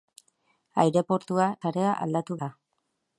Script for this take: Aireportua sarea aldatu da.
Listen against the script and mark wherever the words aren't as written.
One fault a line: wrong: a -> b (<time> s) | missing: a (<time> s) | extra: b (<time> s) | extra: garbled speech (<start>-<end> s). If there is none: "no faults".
no faults